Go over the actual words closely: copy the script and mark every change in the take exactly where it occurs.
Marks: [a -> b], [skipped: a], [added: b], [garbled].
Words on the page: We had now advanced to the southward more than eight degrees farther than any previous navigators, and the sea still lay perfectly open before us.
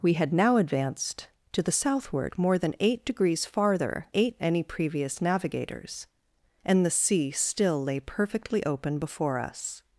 We had now advanced to the southward more than eight degrees farther [than -> eight] any previous navigators, and the sea still lay perfectly open before us.